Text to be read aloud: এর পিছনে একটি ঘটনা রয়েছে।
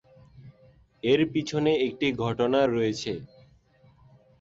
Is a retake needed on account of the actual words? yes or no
no